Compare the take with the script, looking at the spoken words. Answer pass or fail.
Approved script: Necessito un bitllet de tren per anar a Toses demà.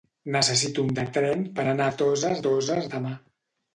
fail